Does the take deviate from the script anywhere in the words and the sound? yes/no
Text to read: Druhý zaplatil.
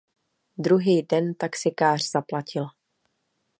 yes